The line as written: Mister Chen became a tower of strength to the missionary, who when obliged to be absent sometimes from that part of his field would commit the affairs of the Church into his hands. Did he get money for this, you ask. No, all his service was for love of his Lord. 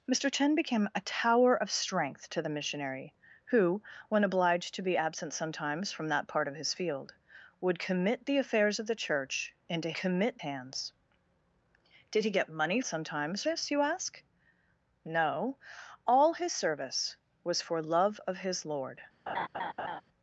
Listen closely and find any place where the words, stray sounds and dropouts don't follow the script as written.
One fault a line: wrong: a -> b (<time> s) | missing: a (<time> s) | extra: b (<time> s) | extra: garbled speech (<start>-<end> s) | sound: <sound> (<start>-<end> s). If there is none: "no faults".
wrong: his -> commit (9.9 s)
wrong: for -> sometimes (12.8 s)
sound: laugh (19.3-20.0 s)